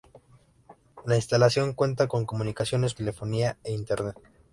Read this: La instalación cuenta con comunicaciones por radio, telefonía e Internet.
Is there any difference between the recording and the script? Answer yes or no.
yes